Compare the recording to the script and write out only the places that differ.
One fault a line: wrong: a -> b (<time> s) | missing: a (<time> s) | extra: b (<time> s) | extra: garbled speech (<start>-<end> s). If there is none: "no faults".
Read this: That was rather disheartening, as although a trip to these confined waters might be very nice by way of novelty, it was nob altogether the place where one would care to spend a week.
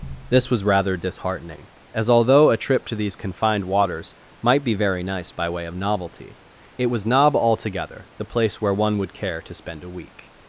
wrong: That -> This (0.3 s)